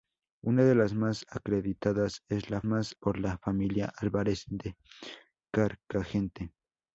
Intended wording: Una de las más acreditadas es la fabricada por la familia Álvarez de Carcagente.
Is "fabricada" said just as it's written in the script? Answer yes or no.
no